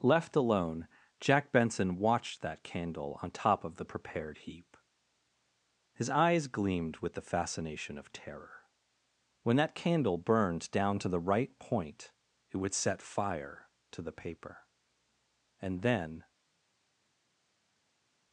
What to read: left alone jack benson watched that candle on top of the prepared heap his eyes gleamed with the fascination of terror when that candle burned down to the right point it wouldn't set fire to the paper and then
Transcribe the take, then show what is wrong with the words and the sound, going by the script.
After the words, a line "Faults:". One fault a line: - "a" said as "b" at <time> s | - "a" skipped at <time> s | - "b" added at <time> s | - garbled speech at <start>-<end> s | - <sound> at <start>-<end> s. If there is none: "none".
left alone jack benson watched that candle on top of the prepared heap his eyes gleamed with the fascination of terror when that candle burned down to the right point it would set fire to the paper and then
Faults:
- "wouldn't" said as "would" at 12.6 s